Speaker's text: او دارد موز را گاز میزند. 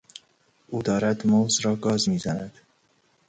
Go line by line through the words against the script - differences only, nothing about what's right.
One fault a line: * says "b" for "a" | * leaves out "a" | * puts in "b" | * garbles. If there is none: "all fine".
all fine